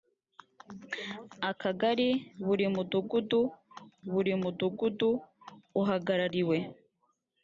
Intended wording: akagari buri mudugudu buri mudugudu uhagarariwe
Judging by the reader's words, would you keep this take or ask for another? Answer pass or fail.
pass